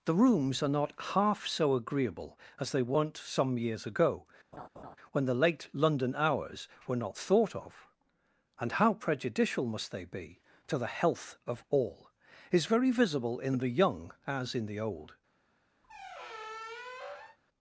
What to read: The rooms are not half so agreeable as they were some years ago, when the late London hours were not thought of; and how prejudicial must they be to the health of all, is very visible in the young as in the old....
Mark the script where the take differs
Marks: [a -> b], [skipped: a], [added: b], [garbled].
The rooms are not half so agreeable as they [were -> weren't] some years ago, when the late London hours were not thought of; and how prejudicial must they be to the health of all, is very visible in the young as in the old....